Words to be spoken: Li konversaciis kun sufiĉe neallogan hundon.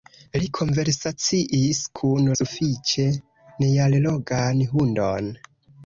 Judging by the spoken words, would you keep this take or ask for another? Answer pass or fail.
pass